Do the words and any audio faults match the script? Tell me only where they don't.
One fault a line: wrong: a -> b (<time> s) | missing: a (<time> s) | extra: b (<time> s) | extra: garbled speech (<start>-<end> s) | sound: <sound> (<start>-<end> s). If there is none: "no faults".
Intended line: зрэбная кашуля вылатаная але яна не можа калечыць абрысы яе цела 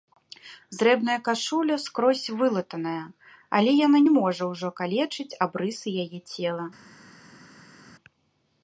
extra: скрозь (1.8 s)
extra: ўжо (4.5 s)